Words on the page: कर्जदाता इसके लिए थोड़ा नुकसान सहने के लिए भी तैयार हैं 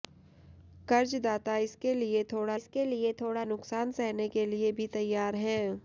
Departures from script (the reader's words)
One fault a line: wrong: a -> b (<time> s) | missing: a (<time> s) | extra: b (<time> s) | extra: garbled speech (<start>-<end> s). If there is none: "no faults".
extra: इसके लिए थोड़ा (2.6 s)